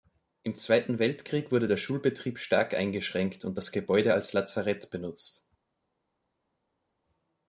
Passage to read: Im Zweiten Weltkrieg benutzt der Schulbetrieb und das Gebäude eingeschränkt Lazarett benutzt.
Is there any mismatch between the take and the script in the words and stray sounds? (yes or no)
yes